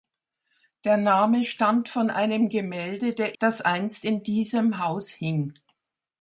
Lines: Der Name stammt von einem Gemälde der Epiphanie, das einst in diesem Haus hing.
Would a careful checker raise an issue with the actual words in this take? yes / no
yes